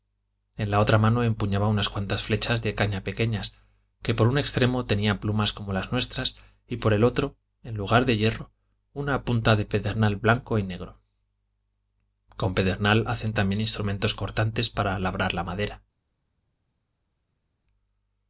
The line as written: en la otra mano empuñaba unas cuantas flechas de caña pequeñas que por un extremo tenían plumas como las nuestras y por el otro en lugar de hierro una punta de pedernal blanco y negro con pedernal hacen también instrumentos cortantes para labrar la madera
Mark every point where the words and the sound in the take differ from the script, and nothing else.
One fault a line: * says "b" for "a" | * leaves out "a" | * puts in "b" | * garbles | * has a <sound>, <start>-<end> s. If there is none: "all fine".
all fine